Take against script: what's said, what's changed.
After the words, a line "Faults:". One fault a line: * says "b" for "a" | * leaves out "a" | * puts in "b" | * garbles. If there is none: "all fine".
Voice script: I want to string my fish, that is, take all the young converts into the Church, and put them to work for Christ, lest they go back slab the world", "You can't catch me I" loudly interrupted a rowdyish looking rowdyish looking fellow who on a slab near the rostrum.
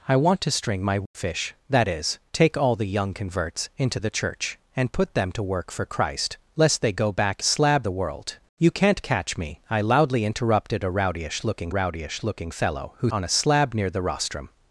I want to string my fish, that is, take all the young converts into the Church, and put them to work for Christ, lest they go back slab the world", "You can't catch me I" loudly interrupted a rowdyish looking rowdyish looking fellow who on a slab near the rostrum.
Faults:
all fine